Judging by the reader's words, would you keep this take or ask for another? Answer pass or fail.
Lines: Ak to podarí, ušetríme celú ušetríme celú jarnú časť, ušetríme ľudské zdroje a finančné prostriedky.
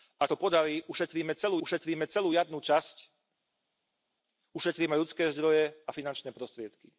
pass